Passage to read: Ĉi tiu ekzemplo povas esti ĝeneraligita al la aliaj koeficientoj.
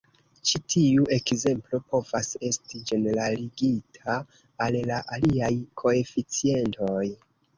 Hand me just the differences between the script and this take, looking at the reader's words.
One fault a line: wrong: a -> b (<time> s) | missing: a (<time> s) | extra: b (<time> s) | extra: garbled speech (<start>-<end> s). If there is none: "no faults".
no faults